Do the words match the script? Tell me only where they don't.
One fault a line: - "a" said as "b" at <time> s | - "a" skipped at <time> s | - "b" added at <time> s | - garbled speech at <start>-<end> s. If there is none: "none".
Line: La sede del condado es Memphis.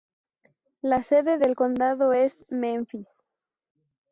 none